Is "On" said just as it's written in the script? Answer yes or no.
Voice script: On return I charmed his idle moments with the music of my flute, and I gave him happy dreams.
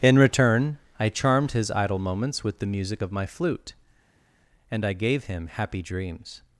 no